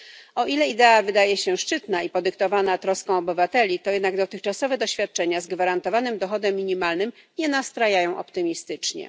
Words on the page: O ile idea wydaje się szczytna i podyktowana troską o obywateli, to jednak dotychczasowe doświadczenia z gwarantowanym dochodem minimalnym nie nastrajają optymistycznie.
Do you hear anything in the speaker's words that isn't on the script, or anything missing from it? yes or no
no